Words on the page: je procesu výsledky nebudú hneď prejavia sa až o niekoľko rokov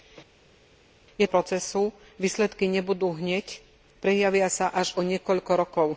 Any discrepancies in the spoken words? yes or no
no